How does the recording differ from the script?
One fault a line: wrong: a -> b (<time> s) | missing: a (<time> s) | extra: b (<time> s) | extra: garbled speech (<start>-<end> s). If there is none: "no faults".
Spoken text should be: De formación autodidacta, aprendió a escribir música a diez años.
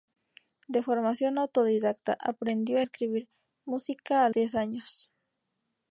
no faults